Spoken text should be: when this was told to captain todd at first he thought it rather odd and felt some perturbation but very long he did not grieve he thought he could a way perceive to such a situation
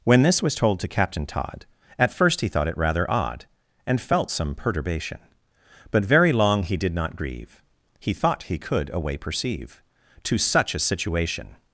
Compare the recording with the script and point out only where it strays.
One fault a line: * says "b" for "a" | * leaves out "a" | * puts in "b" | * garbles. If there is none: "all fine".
all fine